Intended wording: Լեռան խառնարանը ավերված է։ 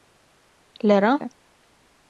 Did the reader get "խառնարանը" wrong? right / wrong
wrong